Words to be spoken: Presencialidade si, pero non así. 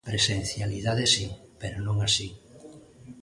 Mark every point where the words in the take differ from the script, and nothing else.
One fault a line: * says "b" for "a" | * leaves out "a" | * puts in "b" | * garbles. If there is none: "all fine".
all fine